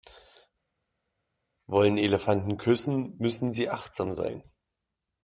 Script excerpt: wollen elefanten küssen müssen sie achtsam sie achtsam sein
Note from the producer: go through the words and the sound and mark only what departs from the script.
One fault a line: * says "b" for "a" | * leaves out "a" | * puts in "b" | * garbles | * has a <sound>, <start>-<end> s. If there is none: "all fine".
* leaves out "sie achtsam"